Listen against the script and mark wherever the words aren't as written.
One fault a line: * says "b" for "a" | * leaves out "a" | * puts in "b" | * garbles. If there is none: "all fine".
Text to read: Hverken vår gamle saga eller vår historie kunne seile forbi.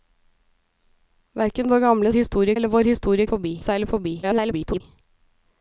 * says "historie" for "saga"
* says "forbi" for "kunne"
* garbles